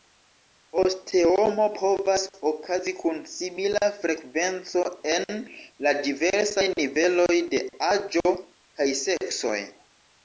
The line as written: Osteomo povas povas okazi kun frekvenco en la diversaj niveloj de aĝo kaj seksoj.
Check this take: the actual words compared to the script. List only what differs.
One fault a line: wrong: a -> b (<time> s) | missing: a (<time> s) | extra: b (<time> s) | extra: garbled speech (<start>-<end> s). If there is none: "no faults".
missing: povas (2.2 s)
extra: simila (3.3 s)